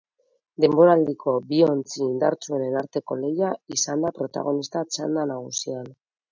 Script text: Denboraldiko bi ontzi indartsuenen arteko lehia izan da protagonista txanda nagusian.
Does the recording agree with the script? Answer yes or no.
yes